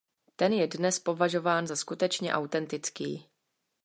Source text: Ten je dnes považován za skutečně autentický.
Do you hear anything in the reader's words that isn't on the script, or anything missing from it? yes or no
no